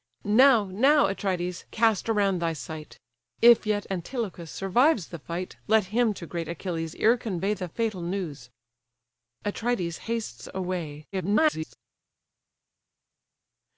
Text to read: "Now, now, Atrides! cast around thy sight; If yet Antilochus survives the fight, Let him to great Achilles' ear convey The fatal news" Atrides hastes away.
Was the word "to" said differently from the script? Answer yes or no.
no